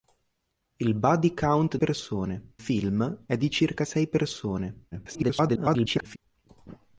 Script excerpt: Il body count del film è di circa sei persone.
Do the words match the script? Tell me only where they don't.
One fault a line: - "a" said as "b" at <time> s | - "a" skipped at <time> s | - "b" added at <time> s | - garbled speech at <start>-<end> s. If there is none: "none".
- "del" said as "persone" at 1.8 s
- garbled speech at 4.9-6.2 s